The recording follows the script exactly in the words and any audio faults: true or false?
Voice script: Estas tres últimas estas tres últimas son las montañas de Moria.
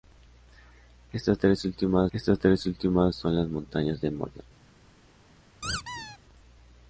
false